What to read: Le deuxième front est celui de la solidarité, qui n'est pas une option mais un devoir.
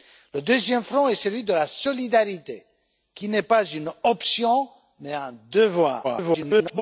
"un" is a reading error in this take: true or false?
false